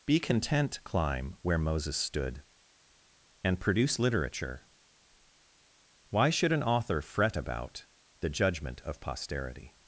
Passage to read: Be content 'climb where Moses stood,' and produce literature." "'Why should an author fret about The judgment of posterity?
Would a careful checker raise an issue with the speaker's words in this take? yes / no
no